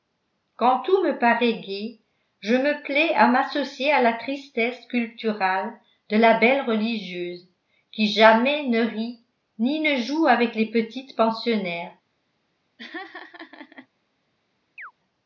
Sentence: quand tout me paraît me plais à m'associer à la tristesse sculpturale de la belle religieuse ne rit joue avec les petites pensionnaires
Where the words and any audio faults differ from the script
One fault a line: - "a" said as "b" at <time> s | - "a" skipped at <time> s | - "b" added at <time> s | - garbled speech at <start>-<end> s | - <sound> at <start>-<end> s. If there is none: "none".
- "gai je" added at 1.6 s
- "qui jamais" added at 7.9 s
- "ni ne" added at 9.6 s
- laugh at 12.8-13.9 s
- chirp at 14.8-14.9 s